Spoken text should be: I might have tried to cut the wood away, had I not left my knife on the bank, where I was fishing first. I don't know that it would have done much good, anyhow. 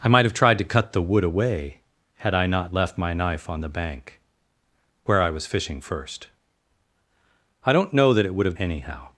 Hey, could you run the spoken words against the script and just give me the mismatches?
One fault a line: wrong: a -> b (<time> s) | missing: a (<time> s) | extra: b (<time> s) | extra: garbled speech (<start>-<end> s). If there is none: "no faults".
missing: done much good (8.6 s)